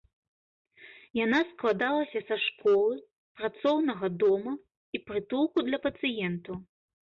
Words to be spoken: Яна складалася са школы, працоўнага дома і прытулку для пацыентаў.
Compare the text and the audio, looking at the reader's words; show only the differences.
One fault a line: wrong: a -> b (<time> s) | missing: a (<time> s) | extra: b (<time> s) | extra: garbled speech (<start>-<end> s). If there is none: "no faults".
no faults